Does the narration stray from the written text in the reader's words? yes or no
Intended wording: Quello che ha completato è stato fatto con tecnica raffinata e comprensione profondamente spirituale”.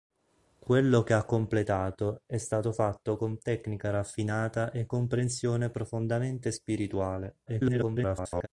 yes